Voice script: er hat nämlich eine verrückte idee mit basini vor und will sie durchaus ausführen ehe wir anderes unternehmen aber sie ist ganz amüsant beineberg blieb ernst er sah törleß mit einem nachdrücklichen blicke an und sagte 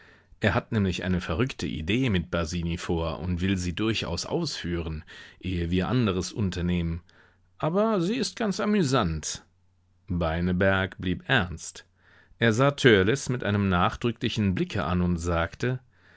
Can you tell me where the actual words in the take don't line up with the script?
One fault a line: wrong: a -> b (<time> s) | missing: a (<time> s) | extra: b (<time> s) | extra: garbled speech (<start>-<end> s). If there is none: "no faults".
no faults